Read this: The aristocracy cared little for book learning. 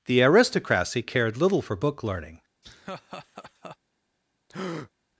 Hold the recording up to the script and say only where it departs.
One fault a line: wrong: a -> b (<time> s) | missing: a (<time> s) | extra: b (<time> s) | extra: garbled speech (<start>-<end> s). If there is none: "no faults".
no faults